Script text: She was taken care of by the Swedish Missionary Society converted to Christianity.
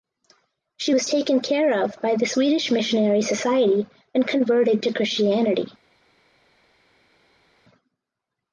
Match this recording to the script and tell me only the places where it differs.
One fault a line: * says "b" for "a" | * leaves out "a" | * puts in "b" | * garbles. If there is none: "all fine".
* puts in "and"